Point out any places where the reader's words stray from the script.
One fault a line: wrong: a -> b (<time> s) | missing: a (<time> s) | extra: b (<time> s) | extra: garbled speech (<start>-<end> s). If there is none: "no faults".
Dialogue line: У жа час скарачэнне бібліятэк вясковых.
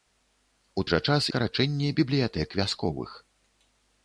no faults